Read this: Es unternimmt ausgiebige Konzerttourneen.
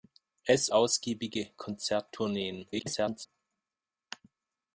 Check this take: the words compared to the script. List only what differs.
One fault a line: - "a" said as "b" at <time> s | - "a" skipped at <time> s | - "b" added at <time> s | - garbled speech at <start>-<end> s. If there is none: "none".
- "unternimmt" skipped at 0.7 s
- garbled speech at 2.7-3.3 s